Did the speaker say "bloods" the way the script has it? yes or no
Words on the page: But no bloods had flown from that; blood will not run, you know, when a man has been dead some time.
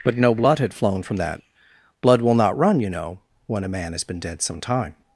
no